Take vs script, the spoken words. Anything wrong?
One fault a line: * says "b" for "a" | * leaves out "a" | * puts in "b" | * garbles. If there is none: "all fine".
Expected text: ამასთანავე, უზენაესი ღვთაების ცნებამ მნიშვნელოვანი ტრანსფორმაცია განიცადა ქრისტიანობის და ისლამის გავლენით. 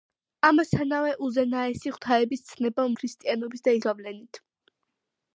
* leaves out "მნიშვნელოვანი ტრანსფორმაცია განიცადა"
* leaves out "ისლამის"